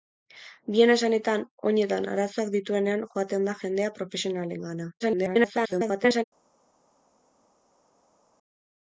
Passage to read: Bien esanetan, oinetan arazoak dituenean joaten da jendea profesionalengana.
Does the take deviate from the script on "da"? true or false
false